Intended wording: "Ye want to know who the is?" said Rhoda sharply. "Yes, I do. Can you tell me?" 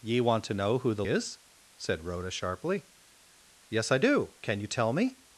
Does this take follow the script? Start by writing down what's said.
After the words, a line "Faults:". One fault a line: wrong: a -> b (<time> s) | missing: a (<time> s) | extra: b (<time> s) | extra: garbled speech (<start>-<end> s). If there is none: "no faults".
"Ye want to know who the is?" said Rhoda sharply. "Yes, I do. Can you tell me?"
Faults:
no faults